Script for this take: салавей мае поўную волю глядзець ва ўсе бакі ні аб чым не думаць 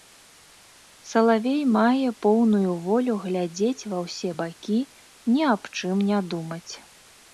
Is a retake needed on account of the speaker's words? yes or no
no